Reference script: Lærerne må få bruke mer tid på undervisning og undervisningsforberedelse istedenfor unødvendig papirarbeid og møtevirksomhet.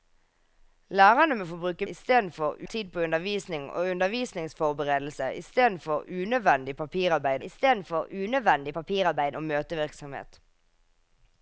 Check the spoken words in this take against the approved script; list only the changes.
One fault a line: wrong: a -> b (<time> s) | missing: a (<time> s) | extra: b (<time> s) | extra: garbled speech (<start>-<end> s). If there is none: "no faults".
wrong: mer -> istedenfor (1.9 s)
extra: istedenfor unødvendig papirarbeid (7.4 s)